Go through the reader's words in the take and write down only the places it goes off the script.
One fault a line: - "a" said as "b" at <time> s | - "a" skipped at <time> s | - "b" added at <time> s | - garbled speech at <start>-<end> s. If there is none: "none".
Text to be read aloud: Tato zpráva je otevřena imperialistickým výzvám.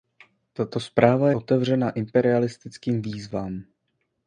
- "je" skipped at 1.3 s